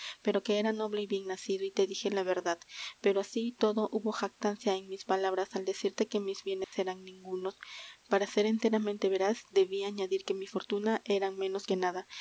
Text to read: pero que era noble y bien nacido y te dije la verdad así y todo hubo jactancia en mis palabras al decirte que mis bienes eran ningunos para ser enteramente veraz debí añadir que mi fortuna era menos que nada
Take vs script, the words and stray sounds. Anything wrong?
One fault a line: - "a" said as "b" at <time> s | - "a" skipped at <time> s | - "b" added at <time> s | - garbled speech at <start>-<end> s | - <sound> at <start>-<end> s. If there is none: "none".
- "pero" added at 3.0 s
- dropout at 6.6-6.7 s